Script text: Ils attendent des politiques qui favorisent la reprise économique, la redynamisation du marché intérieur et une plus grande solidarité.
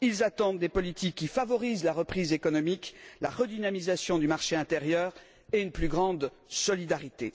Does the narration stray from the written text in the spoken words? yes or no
no